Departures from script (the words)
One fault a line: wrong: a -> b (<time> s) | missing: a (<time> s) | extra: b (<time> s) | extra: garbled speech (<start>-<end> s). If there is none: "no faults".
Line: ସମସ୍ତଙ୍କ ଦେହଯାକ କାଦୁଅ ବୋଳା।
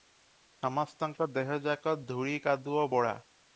extra: ଧୂଳି (2.0 s)